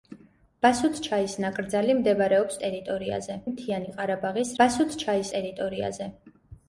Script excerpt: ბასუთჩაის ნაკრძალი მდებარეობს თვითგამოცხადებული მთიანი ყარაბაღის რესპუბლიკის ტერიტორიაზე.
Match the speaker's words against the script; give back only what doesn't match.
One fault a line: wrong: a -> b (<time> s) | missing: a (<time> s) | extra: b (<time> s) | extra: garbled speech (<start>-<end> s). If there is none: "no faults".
wrong: თვითგამოცხადებული -> ტერიტორიაზე (2.7 s)
wrong: რესპუბლიკის -> ბასუთჩაის (4.6 s)